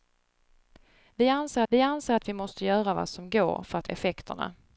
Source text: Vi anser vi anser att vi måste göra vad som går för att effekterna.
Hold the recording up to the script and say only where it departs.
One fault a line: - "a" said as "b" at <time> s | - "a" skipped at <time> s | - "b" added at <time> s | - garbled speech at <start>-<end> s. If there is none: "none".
none